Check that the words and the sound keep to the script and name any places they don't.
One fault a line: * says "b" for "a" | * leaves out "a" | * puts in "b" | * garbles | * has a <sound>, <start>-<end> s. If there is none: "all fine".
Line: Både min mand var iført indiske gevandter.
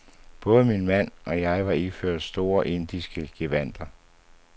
* puts in "og jeg"
* puts in "store"